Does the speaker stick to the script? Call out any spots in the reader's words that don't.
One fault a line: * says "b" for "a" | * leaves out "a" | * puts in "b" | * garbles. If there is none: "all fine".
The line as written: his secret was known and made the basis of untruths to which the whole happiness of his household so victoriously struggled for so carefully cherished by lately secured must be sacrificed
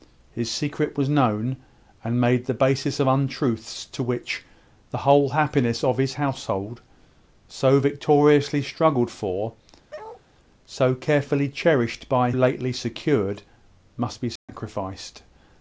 all fine